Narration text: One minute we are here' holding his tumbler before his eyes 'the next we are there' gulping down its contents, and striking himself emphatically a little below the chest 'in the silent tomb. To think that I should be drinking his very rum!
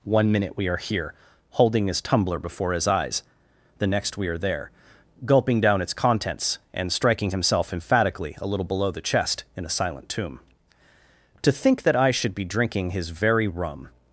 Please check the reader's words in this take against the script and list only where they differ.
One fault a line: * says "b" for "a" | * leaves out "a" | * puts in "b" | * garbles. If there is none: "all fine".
* says "a" for "the"